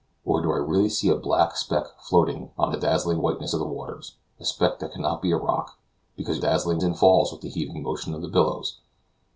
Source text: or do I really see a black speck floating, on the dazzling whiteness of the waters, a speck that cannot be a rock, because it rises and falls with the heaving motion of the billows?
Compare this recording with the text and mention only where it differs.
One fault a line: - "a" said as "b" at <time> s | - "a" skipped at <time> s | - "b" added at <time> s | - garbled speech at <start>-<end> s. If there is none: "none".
- "rises" said as "dazzling" at 6.4 s